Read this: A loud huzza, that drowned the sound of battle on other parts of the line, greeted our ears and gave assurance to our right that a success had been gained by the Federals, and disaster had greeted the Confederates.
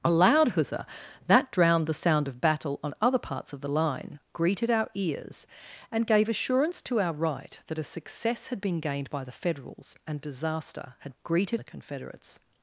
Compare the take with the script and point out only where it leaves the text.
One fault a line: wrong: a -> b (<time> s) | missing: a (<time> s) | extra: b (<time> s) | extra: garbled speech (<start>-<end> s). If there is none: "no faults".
no faults